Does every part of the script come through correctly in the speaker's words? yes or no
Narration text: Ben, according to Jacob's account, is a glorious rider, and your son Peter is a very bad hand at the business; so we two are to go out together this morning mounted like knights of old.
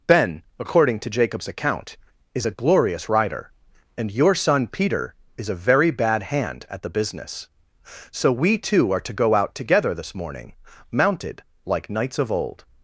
yes